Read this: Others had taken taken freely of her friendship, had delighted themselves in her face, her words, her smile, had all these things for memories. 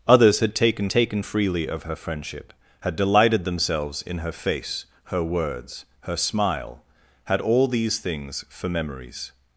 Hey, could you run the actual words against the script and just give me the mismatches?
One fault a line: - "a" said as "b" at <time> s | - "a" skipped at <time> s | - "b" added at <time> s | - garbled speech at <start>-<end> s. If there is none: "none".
none